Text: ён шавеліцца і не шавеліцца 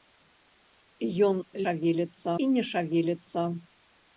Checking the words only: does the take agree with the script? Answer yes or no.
yes